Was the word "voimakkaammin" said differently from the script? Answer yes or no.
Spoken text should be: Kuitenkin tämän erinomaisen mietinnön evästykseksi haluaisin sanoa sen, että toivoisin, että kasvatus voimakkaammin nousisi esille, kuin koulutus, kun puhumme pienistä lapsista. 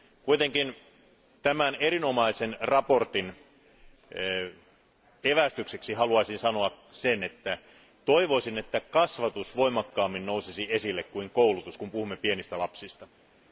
no